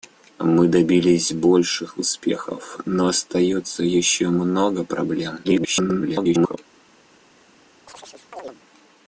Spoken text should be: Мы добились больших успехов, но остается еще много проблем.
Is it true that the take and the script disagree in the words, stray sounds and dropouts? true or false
true